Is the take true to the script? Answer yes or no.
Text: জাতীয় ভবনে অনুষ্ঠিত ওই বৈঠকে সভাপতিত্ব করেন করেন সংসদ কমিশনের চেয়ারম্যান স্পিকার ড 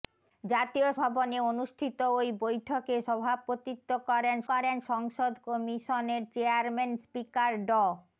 yes